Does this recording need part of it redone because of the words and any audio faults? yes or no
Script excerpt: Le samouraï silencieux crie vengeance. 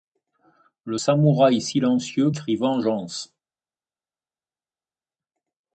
no